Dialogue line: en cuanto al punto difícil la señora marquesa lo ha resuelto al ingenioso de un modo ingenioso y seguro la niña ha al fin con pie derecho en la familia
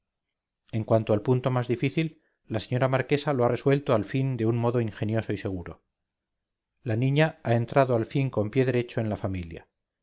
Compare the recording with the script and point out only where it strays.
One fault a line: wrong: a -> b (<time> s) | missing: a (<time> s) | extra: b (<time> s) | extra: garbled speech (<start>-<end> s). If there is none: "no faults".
extra: más (1.5 s)
wrong: ingenioso -> fin (4.0 s)
extra: entrado (7.5 s)